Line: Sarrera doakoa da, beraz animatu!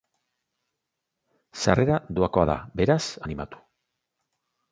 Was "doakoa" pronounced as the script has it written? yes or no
yes